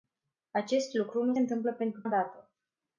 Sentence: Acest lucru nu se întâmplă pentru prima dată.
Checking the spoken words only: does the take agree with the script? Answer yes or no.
no